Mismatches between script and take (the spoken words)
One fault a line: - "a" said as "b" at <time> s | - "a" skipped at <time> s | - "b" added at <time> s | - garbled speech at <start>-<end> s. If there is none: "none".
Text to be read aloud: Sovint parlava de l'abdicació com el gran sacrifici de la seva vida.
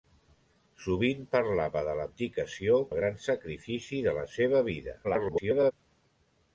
- "com" skipped at 2.8 s
- garbled speech at 5.0-5.7 s